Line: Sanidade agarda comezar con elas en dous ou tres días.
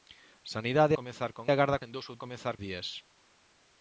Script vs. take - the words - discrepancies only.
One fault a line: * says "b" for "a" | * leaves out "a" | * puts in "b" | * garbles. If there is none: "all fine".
* leaves out "agarda"
* says "agarda" for "elas"
* says "comezar" for "tres"